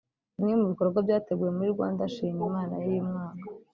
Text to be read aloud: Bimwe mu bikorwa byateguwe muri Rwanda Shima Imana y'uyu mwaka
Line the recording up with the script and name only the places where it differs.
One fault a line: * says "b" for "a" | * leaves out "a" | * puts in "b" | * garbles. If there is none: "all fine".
all fine